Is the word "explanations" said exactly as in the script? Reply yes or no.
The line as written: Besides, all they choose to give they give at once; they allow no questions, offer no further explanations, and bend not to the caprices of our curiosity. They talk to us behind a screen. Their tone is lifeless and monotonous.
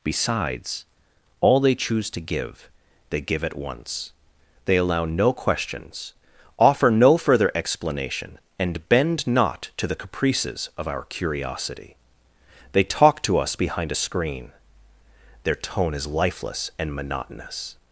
no